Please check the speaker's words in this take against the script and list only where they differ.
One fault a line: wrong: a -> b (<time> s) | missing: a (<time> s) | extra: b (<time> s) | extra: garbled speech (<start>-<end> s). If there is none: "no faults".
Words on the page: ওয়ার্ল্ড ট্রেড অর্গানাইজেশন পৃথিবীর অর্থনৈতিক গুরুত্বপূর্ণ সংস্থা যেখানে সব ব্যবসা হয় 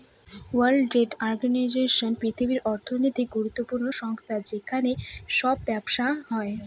no faults